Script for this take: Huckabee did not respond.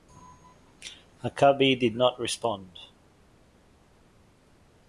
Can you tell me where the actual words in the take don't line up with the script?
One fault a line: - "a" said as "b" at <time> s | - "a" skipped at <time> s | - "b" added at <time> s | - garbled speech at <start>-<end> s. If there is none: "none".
none